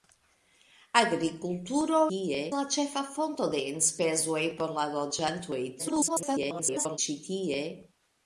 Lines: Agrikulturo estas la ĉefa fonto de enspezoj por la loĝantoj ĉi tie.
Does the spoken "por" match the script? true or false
true